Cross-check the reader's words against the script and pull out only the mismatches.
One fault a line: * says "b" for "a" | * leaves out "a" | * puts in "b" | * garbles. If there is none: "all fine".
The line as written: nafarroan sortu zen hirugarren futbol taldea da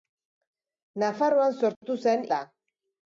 * leaves out "hirugarren futbol taldea"